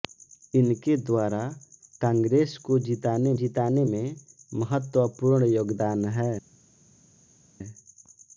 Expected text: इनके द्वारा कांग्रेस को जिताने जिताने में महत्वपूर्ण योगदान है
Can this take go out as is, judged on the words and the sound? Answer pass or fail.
pass